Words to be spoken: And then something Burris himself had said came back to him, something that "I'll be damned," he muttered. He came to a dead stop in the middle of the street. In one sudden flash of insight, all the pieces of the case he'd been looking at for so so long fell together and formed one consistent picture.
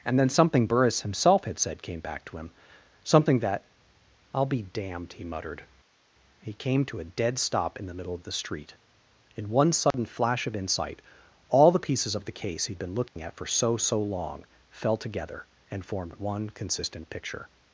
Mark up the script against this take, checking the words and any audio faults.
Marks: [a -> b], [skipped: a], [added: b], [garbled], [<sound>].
And then something Burris himself had said came back to him, something that "I'll be damned," he muttered. He came to a dead stop in the middle of the street. In one sudden [dropout] flash of insight, all the pieces of the case he'd been looking [dropout] at for so so long fell together and formed one consistent picture.